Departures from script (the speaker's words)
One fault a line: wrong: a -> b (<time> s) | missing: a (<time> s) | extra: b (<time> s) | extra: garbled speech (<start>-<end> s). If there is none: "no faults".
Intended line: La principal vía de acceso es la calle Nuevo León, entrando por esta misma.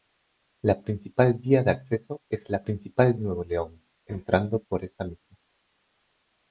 wrong: calle -> principal (2.6 s)